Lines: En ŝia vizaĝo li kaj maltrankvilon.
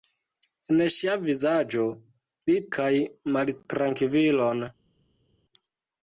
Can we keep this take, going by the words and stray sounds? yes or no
yes